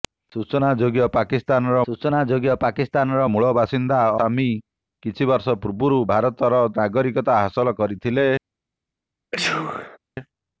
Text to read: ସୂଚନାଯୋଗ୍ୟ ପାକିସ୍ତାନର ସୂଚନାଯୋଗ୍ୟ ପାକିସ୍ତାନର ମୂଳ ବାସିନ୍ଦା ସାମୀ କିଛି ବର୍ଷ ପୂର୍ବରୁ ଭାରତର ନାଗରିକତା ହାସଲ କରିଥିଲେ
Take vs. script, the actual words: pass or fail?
pass